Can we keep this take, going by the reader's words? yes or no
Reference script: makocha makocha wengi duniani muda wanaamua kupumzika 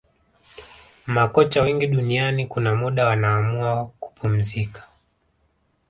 no